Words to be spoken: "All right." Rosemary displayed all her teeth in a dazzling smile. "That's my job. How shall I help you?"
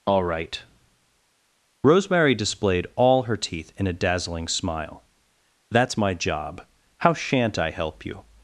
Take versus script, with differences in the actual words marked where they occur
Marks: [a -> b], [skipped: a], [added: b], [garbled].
"All right." Rosemary displayed all her teeth in a dazzling smile. "That's my job. How [shall -> shan't] I help you?"